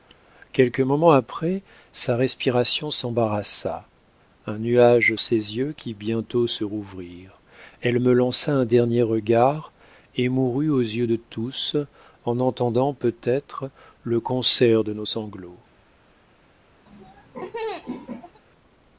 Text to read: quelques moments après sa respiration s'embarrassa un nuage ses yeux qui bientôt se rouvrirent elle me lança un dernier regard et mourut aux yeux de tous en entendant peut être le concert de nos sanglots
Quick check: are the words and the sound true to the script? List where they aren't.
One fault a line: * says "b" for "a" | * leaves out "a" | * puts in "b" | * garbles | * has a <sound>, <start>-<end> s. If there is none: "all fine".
* has a laugh, 16.9-18.4 s